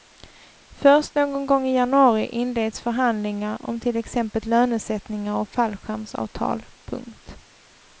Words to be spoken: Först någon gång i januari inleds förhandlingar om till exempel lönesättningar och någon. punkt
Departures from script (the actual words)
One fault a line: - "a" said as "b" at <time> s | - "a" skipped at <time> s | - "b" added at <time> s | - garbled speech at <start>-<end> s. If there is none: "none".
- "någon" said as "fallskärmsavtal" at 5.5 s